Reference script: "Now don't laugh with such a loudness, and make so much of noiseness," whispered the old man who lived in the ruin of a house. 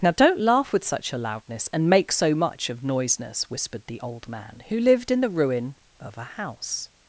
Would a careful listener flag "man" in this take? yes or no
no